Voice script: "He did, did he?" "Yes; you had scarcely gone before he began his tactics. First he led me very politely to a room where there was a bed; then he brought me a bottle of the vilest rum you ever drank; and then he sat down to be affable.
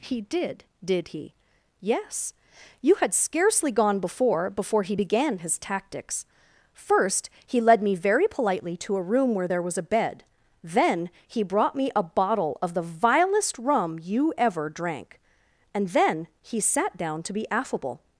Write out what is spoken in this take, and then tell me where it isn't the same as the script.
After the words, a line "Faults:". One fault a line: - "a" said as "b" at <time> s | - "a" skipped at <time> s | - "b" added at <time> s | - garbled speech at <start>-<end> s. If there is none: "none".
"He did, did he?" "Yes; you had scarcely gone before before he began his tactics. First he led me very politely to a room where there was a bed; then he brought me a bottle of the vilest rum you ever drank; and then he sat down to be affable.
Faults:
- "before" added at 4.5 s